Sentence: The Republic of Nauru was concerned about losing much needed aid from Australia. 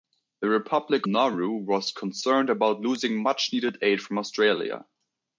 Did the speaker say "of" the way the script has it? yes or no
no